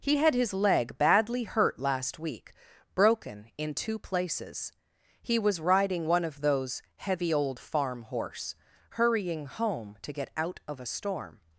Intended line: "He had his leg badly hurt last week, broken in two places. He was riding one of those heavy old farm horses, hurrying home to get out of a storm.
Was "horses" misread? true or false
true